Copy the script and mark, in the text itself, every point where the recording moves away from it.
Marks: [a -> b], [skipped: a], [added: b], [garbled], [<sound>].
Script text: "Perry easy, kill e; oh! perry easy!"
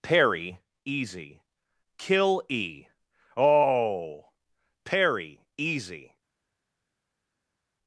"Perry easy, kill e; oh! perry easy!"